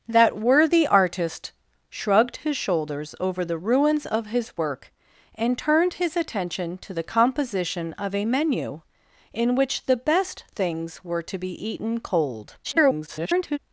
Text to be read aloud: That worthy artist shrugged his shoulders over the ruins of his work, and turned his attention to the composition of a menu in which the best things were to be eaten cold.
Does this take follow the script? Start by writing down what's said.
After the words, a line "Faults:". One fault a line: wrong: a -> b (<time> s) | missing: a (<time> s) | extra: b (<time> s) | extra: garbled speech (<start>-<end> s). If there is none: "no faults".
That worthy artist shrugged his shoulders over the ruins of his work, and turned his attention to the composition of a menu in which the best things were to be eaten cold. [garbled]
Faults:
extra: garbled speech (12.6-13.6 s)